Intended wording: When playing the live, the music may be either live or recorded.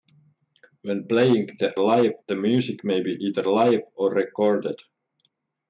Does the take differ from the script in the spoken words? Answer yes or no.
no